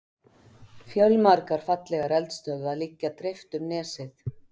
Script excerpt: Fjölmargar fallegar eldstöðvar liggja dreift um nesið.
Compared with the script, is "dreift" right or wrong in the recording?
right